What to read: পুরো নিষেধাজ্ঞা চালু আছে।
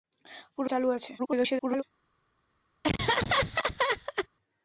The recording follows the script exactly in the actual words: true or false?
false